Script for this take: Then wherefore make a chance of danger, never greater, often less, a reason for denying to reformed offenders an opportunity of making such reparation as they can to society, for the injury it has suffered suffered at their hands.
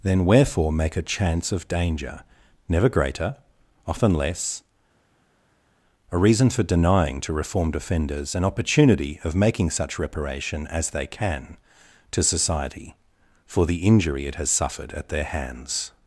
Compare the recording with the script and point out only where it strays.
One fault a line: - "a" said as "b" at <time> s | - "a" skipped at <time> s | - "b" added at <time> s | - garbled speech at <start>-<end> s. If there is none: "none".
- "suffered" skipped at 14.9 s